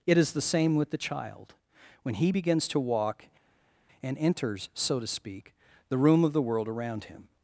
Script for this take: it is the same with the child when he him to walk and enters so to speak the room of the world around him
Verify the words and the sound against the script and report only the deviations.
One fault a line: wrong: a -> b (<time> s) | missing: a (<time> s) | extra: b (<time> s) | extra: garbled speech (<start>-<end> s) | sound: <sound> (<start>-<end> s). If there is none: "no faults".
wrong: him -> begins (2.3 s)